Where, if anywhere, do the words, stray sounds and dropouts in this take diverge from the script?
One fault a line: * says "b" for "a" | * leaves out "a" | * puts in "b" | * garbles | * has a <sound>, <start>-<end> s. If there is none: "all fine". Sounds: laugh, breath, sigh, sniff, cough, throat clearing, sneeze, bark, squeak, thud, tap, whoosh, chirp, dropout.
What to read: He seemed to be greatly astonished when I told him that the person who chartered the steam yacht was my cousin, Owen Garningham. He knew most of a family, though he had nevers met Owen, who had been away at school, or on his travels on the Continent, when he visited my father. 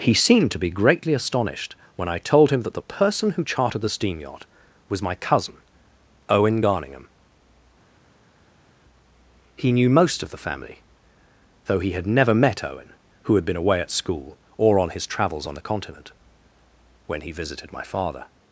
* says "the" for "a"
* says "never" for "nevers"